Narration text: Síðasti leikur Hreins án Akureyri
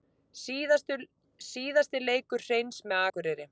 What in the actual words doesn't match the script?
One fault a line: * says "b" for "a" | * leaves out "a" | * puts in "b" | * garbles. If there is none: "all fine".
* says "með" for "án"